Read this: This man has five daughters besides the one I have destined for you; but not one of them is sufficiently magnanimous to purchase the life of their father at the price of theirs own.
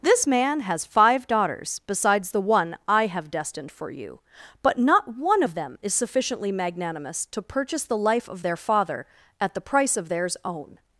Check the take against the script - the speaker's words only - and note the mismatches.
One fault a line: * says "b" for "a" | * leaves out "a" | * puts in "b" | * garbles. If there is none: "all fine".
all fine